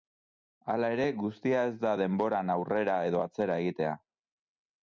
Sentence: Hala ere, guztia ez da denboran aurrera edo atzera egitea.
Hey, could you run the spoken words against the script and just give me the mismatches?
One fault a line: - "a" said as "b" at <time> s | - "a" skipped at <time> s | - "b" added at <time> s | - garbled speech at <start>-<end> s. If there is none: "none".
none